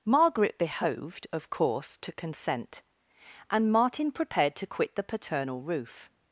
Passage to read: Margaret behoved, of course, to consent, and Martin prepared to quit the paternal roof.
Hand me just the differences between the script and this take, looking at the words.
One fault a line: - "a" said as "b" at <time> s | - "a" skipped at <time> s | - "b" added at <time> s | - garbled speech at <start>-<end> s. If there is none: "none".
none